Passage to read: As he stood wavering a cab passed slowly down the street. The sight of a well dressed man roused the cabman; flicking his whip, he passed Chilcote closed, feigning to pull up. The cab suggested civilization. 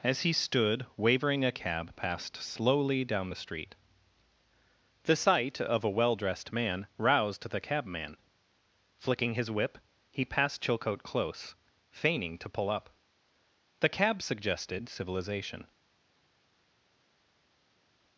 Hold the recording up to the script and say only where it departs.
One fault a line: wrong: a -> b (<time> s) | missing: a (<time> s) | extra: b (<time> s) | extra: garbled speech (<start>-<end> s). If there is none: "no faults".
wrong: closed -> close (11.0 s)